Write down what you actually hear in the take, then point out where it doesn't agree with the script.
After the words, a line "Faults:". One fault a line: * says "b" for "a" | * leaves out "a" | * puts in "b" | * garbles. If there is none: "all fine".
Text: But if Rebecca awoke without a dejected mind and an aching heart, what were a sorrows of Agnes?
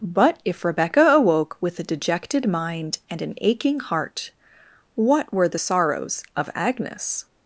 But if Rebecca awoke with a dejected mind and an aching heart, what were the sorrows of Agnes?
Faults:
* says "with" for "without"
* says "the" for "a"